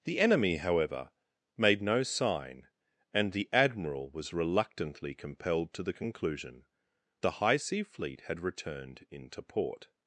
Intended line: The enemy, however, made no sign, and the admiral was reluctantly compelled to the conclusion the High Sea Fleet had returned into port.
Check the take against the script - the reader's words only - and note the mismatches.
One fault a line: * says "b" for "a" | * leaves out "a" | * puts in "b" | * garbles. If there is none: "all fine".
all fine